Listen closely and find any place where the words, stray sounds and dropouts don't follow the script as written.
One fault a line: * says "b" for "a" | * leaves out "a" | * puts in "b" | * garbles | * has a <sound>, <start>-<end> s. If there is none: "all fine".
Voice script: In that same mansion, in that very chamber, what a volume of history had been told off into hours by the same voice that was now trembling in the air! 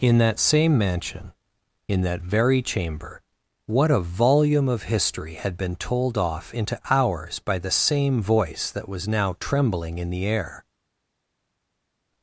all fine